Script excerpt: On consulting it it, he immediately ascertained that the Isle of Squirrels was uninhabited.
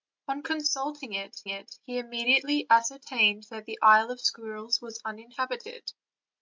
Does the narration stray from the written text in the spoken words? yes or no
no